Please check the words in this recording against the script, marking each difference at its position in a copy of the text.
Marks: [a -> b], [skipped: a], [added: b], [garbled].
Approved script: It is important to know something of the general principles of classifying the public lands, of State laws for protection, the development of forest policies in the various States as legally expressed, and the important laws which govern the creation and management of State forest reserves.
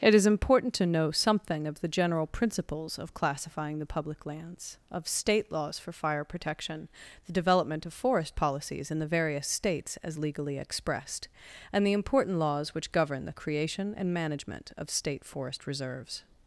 It is important to know something of the general principles of classifying the public lands, of State laws for [added: fire] protection, the development of forest policies in the various States as legally expressed, and the important laws which govern the creation and management of State forest reserves.